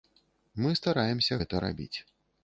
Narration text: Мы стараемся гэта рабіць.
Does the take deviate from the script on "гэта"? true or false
false